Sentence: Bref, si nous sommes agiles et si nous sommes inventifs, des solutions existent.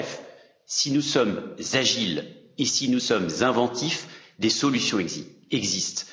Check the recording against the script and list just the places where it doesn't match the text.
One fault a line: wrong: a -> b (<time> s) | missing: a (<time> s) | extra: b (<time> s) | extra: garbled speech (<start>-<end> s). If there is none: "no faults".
no faults